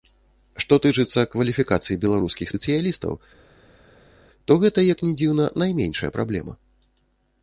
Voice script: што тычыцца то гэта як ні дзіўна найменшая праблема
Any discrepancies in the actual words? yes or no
yes